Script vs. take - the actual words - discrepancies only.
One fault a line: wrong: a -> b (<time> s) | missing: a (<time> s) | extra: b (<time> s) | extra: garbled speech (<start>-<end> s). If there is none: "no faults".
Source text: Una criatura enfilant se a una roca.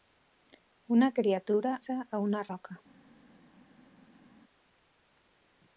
missing: enfilant (1.8 s)